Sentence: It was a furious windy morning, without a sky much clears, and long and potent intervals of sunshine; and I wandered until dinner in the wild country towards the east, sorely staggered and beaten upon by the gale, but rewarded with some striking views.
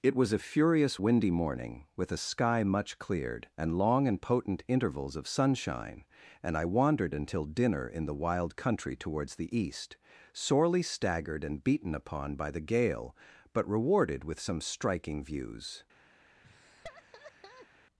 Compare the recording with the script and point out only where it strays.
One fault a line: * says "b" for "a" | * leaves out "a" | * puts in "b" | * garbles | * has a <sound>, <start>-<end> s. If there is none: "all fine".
* says "with" for "without"
* says "cleared" for "clears"
* has a laugh, 16.4-17.7 s